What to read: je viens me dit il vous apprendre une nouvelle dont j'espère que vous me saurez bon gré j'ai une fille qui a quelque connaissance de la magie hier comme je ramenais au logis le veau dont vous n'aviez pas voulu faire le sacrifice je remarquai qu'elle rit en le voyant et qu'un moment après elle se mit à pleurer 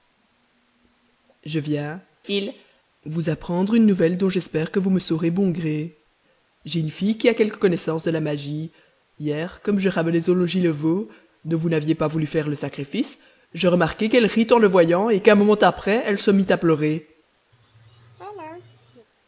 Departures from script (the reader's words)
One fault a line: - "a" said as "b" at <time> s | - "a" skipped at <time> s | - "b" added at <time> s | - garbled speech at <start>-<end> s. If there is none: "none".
- "me dit" skipped at 2.0 s